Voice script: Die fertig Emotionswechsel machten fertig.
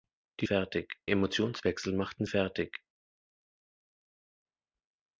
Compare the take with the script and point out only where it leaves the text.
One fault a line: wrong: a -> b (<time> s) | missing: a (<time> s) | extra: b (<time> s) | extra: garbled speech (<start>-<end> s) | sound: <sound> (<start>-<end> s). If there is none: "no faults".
no faults